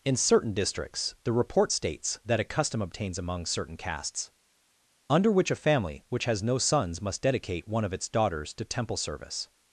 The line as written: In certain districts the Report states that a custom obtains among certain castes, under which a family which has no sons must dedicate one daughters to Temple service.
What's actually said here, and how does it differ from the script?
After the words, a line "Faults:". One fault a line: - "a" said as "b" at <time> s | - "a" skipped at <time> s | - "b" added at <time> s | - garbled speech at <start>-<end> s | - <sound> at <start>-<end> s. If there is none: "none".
In certain districts the Report states that a custom obtains among certain castes, under which a family which has no sons must dedicate one of its daughters to Temple service.
Faults:
- "of its" added at 7.8 s